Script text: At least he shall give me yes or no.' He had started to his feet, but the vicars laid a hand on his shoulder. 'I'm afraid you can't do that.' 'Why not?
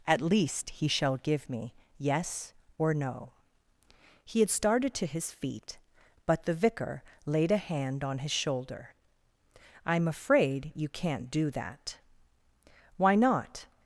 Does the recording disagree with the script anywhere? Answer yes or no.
yes